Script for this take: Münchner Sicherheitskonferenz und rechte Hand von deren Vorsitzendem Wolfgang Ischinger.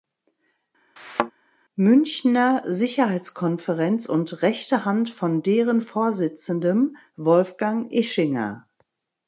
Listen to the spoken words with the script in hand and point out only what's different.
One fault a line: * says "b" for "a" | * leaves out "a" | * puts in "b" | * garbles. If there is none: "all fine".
all fine